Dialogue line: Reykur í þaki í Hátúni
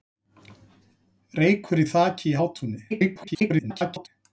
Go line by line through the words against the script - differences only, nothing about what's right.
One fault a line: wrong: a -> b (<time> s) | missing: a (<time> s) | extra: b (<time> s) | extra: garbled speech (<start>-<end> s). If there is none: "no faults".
extra: garbled speech (2.9-4.1 s)